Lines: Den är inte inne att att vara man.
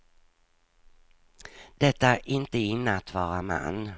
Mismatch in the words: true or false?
true